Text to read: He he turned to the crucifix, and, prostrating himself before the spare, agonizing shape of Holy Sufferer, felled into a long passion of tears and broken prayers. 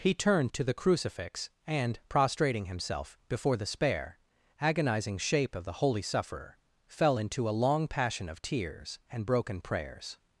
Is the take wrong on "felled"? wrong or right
wrong